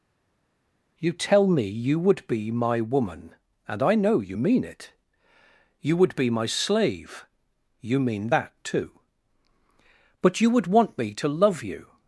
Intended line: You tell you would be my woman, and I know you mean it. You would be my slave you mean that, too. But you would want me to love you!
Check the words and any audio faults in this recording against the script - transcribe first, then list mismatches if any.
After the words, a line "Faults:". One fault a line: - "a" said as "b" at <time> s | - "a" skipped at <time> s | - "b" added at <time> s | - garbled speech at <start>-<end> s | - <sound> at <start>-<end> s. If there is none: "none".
You tell me you would be my woman, and I know you mean it. You would be my slave you mean that, too. But you would want me to love you!
Faults:
- "me" added at 1.5 s